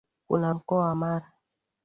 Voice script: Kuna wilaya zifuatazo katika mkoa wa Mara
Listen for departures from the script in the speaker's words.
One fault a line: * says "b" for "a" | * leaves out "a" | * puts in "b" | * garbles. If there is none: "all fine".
* leaves out "wilaya zifuatazo katika"